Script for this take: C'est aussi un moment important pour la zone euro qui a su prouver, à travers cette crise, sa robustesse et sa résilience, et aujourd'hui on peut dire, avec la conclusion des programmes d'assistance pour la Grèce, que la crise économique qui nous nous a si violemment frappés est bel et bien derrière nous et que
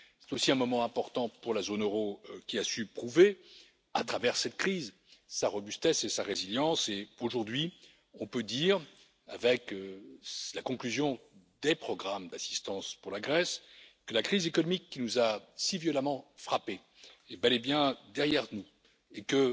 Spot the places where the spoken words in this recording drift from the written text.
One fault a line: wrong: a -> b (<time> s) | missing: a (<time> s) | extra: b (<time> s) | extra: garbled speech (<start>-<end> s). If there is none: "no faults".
missing: nous (15.2 s)